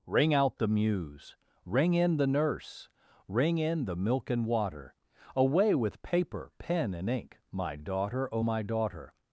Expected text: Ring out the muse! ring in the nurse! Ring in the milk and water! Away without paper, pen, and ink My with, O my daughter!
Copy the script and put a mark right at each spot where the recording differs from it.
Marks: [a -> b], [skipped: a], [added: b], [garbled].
Ring out the muse! ring in the nurse! Ring in the milk and water! Away [without -> with] paper, pen, and ink My [with, -> daughter] O my daughter!